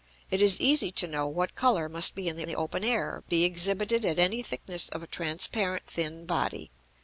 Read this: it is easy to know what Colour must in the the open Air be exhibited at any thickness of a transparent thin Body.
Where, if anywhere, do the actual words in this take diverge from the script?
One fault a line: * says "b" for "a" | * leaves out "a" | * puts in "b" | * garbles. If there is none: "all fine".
all fine